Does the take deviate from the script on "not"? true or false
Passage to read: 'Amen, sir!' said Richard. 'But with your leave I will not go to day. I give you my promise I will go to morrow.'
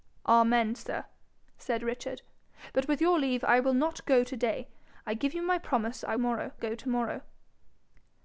false